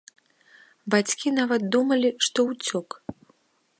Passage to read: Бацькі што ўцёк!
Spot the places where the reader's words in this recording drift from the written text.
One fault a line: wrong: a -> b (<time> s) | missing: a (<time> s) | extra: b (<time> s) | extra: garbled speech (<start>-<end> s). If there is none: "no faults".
extra: нават думалі (1.4 s)